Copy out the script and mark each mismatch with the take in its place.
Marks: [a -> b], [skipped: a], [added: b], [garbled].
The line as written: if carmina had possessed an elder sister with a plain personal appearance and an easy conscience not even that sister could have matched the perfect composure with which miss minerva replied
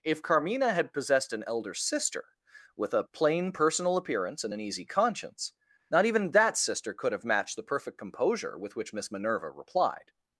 if carmina had possessed an elder sister with a plain personal appearance and an easy conscience not even that sister could have matched the perfect composure with which miss minerva replied